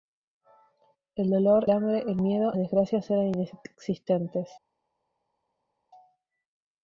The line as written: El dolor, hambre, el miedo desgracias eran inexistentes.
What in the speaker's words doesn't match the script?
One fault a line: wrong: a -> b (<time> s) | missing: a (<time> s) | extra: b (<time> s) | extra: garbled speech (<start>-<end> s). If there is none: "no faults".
no faults